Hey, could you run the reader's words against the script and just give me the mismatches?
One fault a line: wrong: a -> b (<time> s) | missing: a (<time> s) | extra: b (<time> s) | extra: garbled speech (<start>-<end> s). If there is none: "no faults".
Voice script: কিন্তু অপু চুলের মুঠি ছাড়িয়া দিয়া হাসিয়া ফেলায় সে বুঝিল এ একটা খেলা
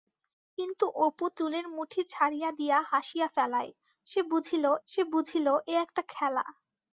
extra: সে বুঝিল (4.9 s)